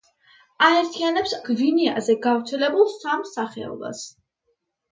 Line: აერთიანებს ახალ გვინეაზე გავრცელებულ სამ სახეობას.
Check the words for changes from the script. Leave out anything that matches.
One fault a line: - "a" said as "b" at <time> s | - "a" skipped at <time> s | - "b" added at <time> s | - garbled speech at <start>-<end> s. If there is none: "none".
- "ახალ" skipped at 1.3 s